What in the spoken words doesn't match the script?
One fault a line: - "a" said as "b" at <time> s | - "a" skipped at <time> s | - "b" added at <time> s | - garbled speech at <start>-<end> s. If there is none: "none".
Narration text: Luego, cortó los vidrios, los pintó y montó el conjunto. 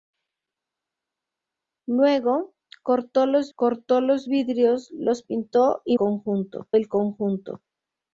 - "cortó los" added at 3.5 s
- "montó" said as "conjunto" at 5.9 s